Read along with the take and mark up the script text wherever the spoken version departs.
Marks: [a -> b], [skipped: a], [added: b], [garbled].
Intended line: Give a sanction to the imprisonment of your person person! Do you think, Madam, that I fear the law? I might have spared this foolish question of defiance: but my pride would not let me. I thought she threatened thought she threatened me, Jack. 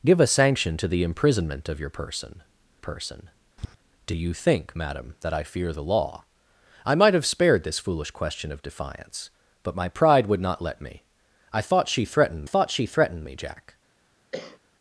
Give a sanction to the imprisonment of your person person! Do you think, Madam, that I fear the law? I might have spared this foolish question of defiance: but my pride would not let me. I thought she threatened thought she threatened me, Jack.